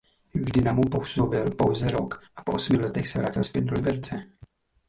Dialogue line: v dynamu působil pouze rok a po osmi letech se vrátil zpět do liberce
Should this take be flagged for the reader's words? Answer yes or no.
no